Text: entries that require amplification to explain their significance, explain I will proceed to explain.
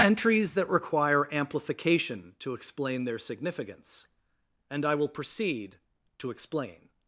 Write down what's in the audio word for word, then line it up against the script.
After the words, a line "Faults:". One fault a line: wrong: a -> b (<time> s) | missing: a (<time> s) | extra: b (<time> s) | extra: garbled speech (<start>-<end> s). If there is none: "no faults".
entries that require amplification to explain their significance, and I will proceed to explain.
Faults:
wrong: explain -> and (4.7 s)